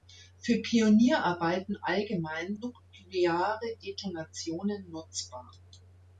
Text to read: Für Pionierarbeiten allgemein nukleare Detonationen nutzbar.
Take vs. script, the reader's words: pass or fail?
pass